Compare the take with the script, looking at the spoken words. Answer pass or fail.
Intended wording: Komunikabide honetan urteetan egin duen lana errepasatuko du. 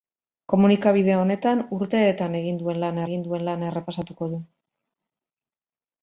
fail